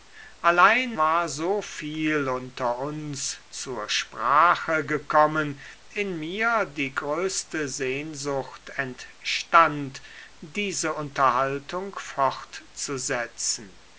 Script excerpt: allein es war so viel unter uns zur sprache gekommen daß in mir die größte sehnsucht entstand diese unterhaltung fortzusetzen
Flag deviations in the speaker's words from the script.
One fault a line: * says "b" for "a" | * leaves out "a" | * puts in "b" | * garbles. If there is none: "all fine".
* leaves out "es"
* leaves out "daß"